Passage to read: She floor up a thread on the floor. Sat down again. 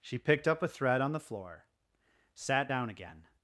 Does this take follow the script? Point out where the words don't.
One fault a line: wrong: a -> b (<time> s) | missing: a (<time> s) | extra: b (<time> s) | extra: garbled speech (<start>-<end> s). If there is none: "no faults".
wrong: floor -> picked (0.2 s)